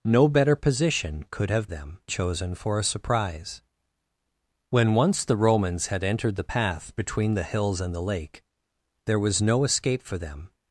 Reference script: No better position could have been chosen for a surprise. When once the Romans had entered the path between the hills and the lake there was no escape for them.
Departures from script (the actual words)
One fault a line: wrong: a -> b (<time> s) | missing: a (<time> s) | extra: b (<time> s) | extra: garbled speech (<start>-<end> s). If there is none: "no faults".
wrong: been -> them (1.7 s)